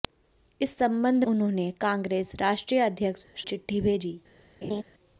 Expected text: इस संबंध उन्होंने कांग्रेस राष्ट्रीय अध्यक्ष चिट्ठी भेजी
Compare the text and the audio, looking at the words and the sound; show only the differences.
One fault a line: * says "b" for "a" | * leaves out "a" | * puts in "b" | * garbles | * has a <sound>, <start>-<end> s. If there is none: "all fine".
* has a laugh, 4.6-4.8 s